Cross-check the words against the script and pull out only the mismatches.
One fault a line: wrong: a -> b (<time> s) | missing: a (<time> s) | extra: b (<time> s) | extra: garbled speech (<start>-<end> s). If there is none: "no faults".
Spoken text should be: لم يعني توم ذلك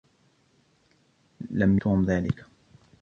missing: يعني (1.8 s)